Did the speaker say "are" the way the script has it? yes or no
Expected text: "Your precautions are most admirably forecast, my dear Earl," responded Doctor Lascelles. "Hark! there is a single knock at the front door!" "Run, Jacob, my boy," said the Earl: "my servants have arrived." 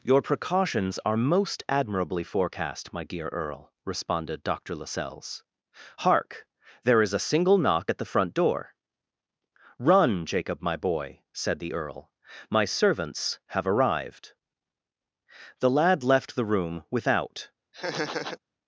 yes